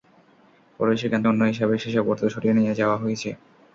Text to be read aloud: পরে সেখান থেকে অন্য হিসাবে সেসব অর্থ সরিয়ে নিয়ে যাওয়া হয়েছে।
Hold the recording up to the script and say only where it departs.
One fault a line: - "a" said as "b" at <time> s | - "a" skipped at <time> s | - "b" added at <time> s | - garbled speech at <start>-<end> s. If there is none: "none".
- "থেকে" skipped at 1.2 s